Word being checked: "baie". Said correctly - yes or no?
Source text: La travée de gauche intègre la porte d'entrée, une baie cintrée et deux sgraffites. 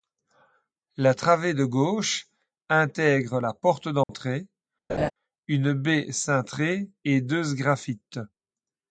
yes